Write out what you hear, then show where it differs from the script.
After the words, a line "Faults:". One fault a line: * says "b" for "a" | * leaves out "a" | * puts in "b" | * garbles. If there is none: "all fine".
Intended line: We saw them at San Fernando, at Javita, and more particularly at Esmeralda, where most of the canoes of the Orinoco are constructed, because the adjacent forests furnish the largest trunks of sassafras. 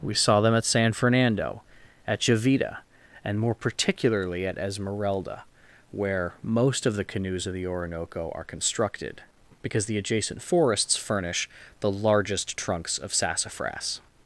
We saw them at San Fernando, at Javita, and more particularly at Esmeralda, where most of the canoes of the Orinoco are constructed, because the adjacent forests furnish the largest trunks of sassafras.
Faults:
all fine